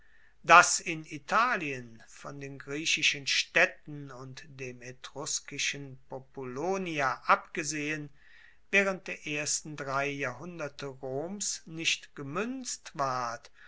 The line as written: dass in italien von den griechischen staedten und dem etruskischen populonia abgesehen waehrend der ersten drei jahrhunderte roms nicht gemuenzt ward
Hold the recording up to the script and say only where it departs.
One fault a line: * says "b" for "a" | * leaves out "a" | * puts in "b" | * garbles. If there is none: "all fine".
all fine